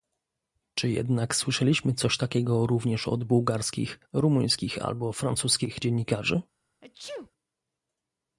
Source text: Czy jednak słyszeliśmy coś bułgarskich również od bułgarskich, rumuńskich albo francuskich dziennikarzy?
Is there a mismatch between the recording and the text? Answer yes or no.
yes